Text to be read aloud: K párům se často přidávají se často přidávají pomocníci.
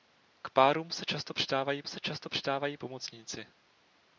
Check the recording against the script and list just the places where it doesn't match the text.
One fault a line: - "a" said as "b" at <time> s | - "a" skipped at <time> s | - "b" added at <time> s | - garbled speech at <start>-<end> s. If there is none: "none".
none